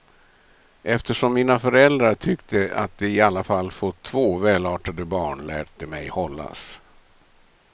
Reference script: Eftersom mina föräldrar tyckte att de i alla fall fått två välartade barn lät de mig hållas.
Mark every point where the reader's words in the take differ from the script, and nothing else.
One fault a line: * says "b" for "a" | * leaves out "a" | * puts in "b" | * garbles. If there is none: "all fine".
all fine